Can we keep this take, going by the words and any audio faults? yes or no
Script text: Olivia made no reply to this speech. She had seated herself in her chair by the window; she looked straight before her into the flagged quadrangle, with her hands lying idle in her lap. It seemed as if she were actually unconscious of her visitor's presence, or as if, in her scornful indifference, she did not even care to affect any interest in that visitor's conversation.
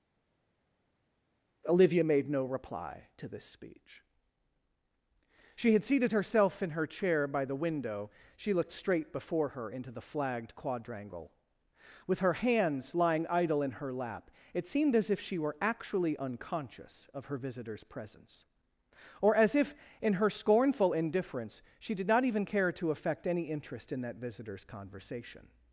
yes